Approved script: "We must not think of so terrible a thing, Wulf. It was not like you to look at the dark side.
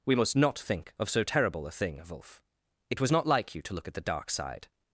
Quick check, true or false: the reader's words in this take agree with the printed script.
true